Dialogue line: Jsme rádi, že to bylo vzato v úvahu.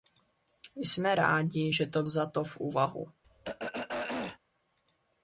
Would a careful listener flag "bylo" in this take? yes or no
yes